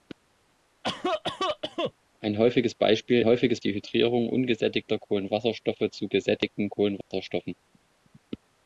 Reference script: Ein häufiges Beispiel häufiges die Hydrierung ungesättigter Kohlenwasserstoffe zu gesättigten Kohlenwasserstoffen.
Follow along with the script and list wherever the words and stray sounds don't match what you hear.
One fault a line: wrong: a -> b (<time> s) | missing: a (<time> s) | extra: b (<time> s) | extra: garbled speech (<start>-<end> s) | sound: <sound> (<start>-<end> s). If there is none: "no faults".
sound: cough (0.8-1.9 s)
sound: dropout (7.0-7.1 s)